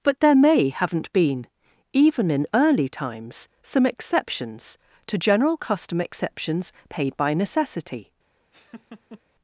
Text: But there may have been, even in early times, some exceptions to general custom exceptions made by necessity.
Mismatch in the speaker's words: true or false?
true